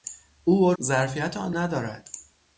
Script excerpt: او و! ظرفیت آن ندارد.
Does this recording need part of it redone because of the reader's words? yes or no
no